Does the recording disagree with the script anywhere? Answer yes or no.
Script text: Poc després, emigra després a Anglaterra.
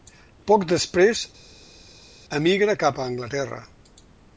yes